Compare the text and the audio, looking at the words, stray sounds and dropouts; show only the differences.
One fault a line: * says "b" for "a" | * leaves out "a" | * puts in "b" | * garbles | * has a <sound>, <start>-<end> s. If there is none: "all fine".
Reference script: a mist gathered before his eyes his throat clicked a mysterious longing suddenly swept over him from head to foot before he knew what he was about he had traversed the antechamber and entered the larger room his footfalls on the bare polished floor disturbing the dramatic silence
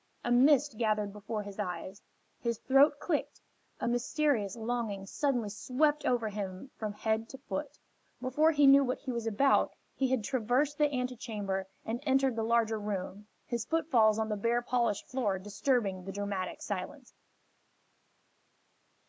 all fine